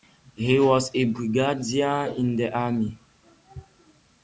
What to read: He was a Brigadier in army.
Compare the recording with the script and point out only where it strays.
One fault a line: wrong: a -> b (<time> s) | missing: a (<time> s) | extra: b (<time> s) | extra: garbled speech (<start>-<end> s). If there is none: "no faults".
extra: the (2.4 s)